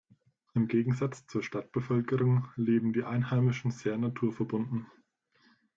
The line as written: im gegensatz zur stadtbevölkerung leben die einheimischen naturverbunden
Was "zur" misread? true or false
false